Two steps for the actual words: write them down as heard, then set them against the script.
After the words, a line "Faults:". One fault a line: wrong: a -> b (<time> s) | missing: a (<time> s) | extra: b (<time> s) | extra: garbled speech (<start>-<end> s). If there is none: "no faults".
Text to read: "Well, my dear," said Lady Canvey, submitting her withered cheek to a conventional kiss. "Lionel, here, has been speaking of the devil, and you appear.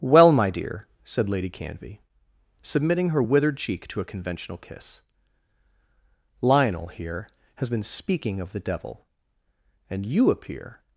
"Well, my dear," said Lady Canvey, submitting her withered cheek to a conventional kiss. "Lionel, here, has been speaking of the devil, and you appear.
Faults:
no faults